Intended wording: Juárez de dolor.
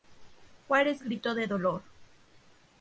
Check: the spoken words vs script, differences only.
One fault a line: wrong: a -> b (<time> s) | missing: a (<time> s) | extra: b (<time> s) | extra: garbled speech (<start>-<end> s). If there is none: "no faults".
extra: gritó (1.0 s)